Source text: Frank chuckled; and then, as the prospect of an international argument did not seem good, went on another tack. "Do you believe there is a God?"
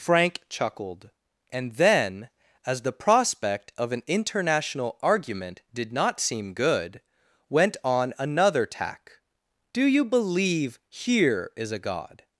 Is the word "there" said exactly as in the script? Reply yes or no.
no